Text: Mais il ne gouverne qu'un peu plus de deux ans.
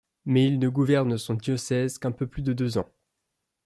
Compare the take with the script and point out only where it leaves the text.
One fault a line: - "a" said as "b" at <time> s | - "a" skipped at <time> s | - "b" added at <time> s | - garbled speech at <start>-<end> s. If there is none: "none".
- "son diocèse" added at 1.2 s